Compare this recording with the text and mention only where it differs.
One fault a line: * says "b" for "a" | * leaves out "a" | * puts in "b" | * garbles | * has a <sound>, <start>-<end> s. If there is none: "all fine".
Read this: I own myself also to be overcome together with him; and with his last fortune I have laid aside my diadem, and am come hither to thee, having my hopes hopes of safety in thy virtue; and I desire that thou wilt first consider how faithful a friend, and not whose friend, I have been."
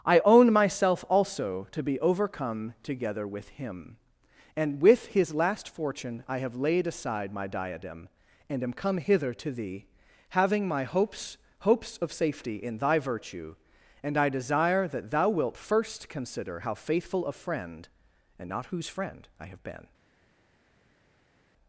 all fine